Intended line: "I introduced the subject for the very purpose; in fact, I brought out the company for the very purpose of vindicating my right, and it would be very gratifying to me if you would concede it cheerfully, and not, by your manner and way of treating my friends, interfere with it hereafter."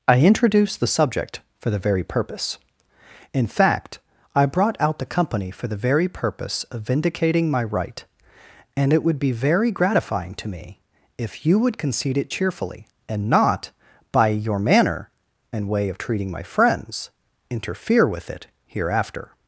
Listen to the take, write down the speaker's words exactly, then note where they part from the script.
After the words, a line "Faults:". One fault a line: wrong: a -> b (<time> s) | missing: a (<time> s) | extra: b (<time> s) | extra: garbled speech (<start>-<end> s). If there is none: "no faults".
"I introduced the subject for the very purpose; in fact, I brought out the company for the very purpose of vindicating my right, and it would be very gratifying to me if you would concede it cheerfully, and not, by your manner and way of treating my friends, interfere with it hereafter."
Faults:
no faults